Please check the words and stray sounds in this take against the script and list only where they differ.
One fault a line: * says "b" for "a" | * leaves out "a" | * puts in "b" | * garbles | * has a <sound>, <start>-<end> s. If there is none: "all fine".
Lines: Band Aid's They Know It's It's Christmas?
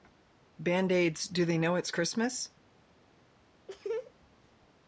* puts in "Do"
* leaves out "It's"
* has a laugh, 3.7-4.1 s